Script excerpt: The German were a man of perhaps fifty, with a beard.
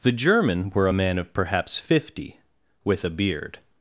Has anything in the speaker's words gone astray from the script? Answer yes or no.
no